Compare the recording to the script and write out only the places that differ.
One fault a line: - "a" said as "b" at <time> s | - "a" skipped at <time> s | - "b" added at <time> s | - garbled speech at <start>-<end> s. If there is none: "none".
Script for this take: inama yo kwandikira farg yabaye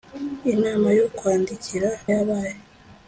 - "farg" skipped at 1.9 s